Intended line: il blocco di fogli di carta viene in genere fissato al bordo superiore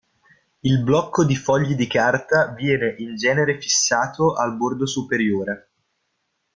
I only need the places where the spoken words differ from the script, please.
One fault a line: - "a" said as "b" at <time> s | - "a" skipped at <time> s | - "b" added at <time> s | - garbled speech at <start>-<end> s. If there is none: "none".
none